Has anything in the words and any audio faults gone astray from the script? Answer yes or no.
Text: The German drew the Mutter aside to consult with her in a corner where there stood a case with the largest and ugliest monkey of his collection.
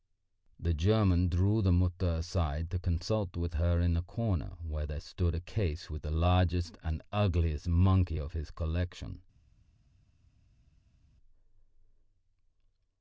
no